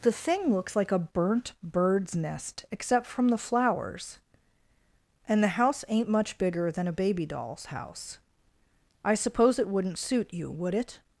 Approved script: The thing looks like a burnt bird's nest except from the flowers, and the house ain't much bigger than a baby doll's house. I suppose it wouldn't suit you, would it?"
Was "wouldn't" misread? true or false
false